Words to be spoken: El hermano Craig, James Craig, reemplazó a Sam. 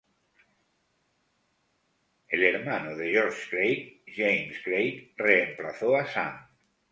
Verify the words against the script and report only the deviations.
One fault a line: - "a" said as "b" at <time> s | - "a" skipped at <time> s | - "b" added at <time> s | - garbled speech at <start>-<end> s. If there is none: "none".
- "de George" added at 2.9 s